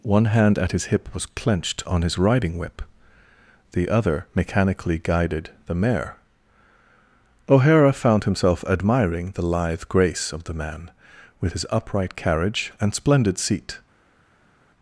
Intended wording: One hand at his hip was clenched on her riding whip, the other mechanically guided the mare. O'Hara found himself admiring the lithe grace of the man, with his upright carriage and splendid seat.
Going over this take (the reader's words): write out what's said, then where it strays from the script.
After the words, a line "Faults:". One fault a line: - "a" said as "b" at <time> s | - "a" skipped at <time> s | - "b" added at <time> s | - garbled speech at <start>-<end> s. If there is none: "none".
One hand at his hip was clenched on his riding whip, the other mechanically guided the mare. O'Hara found himself admiring the lithe grace of the man, with his upright carriage and splendid seat.
Faults:
- "her" said as "his" at 2.0 s